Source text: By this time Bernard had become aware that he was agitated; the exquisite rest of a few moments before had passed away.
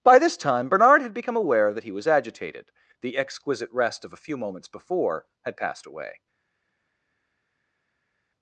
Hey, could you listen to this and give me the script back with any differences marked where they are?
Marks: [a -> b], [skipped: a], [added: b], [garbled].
By this time Bernard had become aware that he was agitated; the exquisite rest of a few moments before had passed away.